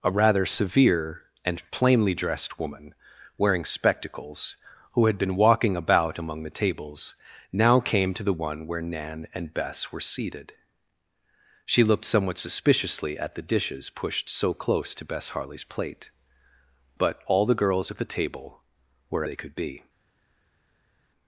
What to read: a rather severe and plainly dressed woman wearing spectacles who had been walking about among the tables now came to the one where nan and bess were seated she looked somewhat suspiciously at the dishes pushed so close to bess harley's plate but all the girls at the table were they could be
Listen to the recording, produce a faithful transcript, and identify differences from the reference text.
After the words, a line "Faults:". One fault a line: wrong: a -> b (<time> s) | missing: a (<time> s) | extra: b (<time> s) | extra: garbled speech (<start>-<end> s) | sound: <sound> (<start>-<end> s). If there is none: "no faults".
a rather severe and plainly dressed woman wearing spectacles who had been walking about among the tables now came to the one where nan and bess were seated she looked somewhat suspiciously at the dishes pushed so close to bess harley's plate but all the girls at the table were they could be
Faults:
no faults